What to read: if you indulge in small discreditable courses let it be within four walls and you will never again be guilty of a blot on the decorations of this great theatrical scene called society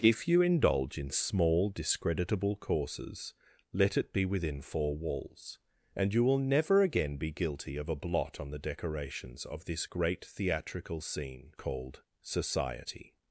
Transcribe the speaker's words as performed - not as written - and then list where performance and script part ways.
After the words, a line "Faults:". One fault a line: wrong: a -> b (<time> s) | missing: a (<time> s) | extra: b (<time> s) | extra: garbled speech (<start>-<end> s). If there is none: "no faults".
if you indulge in small discreditable courses let it be within four walls and you will never again be guilty of a blot on the decorations of this great theatrical scene called society
Faults:
no faults